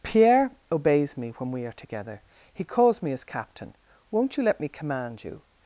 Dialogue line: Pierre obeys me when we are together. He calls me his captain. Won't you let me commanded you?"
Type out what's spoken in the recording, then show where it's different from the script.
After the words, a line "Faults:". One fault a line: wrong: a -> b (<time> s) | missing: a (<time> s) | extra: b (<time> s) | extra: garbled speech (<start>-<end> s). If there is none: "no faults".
Pierre obeys me when we are together. He calls me his captain. Won't you let me command you?"
Faults:
wrong: commanded -> command (4.7 s)